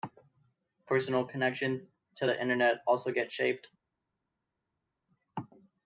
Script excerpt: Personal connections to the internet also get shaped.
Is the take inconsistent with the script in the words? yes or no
no